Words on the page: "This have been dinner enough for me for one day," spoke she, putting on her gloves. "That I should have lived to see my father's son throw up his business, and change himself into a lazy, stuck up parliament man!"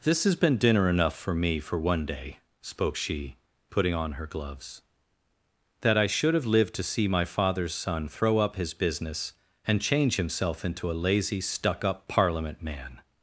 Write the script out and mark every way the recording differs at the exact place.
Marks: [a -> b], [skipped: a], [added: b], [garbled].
"This [have -> has] been dinner enough for me for one day," spoke she, putting on her gloves. "That I should have lived to see my father's son throw up his business, and change himself into a lazy, stuck up parliament man!"